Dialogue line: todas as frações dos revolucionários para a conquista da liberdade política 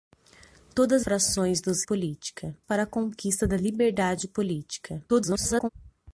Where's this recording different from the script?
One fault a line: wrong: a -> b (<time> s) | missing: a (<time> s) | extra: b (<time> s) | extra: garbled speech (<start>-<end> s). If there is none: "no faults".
missing: as (1.1 s)
wrong: revolucionários -> política (1.8 s)
extra: garbled speech (5.1-5.7 s)